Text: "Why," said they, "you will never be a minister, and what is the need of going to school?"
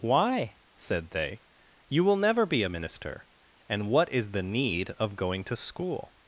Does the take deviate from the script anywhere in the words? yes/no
no